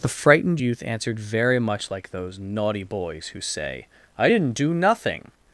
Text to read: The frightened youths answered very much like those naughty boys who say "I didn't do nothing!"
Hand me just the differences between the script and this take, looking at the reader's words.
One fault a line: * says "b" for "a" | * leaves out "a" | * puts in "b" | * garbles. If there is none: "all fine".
* says "youth" for "youths"